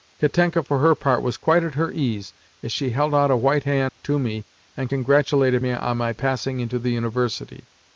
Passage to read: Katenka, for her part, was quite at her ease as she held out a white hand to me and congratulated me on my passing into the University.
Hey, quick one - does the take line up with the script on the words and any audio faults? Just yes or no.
no